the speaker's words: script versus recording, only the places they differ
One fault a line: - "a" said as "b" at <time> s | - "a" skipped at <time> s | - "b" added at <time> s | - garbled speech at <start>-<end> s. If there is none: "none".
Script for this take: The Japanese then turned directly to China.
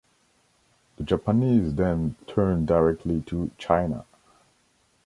none